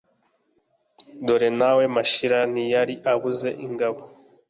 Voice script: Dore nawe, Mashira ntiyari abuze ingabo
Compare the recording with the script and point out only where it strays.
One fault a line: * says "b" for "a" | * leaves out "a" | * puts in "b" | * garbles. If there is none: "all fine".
all fine